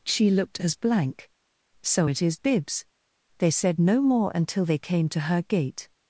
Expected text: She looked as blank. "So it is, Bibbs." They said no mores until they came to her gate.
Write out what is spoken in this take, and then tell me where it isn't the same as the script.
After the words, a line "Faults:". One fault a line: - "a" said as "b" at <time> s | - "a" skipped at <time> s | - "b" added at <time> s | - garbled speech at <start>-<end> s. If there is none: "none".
She looked as blank. "So it is, Bibbs." They said no more until they came to her gate.
Faults:
- "mores" said as "more" at 4.0 s